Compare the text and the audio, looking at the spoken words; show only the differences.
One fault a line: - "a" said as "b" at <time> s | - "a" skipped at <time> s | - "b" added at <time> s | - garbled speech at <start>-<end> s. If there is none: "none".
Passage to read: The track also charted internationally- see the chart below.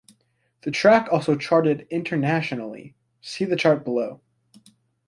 none